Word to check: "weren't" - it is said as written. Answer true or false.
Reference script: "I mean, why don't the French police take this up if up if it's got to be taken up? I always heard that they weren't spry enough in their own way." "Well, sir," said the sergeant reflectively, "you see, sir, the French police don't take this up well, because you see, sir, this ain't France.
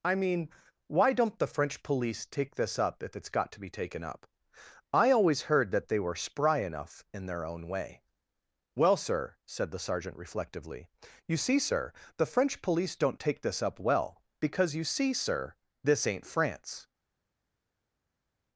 false